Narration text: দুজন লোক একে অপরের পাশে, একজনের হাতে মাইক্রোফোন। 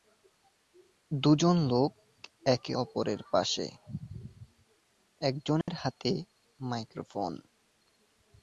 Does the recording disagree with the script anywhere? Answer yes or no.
no